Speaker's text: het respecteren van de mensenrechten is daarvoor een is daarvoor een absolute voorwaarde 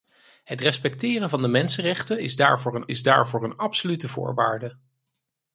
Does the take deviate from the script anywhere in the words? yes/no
no